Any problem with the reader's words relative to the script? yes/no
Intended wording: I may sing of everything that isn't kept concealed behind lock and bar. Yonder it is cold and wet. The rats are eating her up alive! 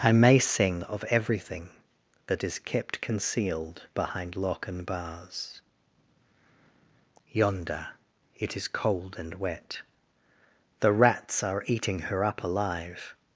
yes